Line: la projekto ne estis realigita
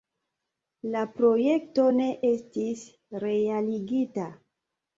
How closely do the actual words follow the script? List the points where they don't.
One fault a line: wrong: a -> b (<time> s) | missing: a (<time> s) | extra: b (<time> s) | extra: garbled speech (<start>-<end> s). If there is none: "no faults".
no faults